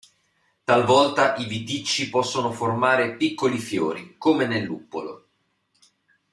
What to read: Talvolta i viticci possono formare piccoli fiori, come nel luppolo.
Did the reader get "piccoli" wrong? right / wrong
right